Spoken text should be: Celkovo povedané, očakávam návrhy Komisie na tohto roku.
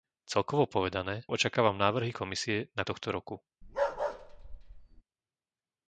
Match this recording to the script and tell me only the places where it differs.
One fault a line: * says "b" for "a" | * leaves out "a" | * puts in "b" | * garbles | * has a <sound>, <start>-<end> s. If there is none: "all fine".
* has a bark, 3.6-5.0 s